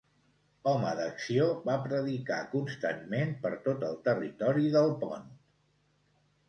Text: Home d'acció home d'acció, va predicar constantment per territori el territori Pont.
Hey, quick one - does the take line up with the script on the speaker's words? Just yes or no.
no